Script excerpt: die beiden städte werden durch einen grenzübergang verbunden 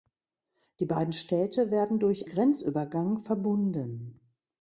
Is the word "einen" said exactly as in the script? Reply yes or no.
no